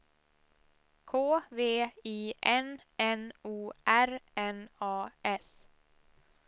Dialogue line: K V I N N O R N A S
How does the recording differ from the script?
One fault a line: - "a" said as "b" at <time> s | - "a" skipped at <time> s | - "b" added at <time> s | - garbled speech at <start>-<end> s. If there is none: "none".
none